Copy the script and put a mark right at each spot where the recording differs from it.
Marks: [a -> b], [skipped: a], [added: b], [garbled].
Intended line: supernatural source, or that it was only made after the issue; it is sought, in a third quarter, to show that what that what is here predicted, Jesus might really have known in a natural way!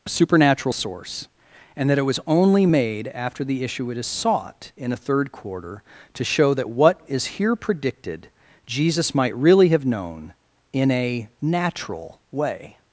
supernatural source, [or -> and] that it was only made after the issue; it is sought, in a third quarter, to show that what [skipped: that what] is here predicted, Jesus might really have known in a natural way!